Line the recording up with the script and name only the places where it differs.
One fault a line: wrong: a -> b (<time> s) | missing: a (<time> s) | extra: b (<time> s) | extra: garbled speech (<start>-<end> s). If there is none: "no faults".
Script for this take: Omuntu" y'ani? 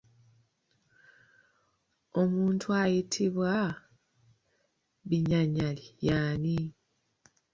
extra: ayitibwa Binyanyali (2.8 s)